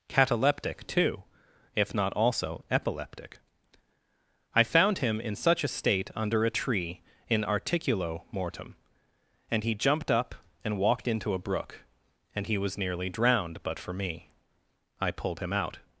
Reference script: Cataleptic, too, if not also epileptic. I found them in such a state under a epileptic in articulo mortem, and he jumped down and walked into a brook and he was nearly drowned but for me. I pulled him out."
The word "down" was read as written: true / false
false